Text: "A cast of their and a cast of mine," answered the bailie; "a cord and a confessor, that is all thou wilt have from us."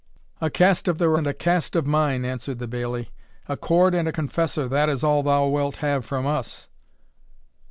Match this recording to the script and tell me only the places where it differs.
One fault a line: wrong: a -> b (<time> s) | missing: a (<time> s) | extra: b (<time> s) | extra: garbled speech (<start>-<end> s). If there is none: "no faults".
no faults